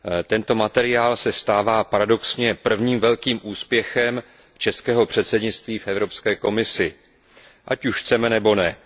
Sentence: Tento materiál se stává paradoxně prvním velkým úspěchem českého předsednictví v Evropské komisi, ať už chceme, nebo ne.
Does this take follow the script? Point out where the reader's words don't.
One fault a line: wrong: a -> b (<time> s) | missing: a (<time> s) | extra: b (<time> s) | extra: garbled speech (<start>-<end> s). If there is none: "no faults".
no faults